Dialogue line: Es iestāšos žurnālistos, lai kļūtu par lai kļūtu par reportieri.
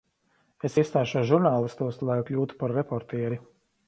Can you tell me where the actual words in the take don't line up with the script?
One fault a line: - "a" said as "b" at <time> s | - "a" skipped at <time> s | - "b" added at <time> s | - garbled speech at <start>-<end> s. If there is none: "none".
- "lai kļūtu par" skipped at 2.7 s